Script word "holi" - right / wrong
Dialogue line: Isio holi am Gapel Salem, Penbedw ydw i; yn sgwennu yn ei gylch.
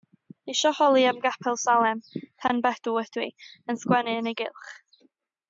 right